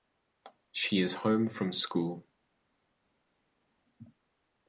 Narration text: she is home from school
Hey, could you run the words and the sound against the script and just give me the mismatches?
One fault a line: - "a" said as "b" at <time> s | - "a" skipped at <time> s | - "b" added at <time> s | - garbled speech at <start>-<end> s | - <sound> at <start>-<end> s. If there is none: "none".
none